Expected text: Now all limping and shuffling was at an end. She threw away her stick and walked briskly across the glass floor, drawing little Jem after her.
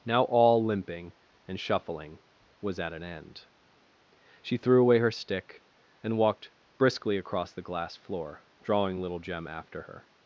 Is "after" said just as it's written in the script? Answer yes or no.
yes